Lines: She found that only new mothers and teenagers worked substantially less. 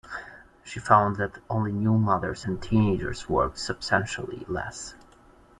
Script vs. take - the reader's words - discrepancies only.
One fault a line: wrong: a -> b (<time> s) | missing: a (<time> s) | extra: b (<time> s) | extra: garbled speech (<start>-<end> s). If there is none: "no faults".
no faults